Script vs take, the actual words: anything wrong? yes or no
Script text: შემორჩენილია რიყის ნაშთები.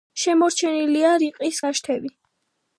no